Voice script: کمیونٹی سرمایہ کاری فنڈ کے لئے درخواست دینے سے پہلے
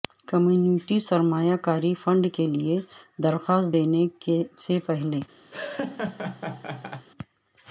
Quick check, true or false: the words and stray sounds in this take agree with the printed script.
false